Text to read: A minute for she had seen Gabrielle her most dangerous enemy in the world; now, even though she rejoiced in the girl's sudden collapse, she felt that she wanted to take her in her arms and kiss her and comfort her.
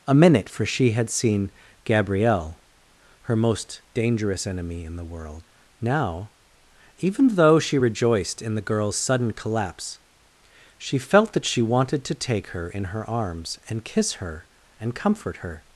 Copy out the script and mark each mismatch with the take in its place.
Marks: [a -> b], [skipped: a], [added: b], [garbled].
A minute for she had seen Gabrielle her most dangerous enemy in the world; now, even though she rejoiced in the girl's sudden collapse, she felt that she wanted to take her in her arms and kiss her and comfort her.